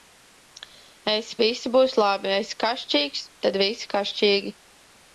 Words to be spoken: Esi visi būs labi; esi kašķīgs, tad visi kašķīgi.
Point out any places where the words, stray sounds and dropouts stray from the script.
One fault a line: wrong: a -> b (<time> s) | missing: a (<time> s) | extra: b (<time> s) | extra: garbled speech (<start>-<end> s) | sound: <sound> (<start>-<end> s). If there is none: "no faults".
no faults